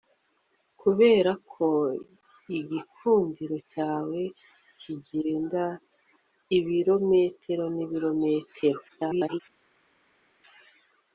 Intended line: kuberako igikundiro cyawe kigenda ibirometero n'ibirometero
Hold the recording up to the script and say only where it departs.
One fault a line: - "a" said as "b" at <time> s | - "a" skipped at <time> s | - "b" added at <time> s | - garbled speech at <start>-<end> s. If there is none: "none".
- garbled speech at 8.9-9.4 s